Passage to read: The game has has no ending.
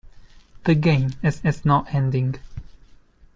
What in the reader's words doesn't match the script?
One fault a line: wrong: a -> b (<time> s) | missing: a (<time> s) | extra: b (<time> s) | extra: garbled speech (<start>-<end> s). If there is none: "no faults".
no faults